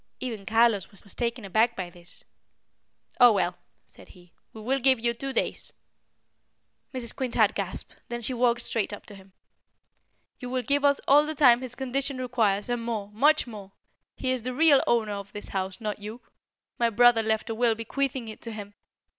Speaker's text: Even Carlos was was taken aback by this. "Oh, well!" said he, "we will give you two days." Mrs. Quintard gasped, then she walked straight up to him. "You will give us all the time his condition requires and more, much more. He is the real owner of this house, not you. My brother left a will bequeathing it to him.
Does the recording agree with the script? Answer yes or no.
yes